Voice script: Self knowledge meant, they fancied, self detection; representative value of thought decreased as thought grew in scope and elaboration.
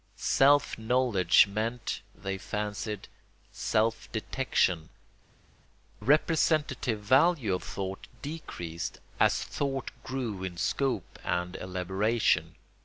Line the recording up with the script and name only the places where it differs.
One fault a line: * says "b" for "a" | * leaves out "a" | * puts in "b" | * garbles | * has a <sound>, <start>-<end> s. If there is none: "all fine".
all fine